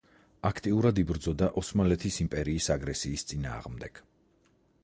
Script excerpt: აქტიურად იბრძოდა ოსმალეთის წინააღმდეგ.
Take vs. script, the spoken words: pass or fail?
fail